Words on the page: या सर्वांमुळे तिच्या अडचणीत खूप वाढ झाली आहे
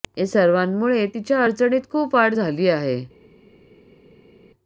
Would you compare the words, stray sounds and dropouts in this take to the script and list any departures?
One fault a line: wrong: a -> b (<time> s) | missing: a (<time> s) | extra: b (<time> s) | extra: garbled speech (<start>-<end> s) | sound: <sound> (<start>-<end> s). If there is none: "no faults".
no faults